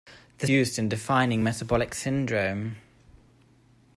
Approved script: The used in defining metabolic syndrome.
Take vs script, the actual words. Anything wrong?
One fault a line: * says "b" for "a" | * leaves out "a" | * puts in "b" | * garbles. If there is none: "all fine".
all fine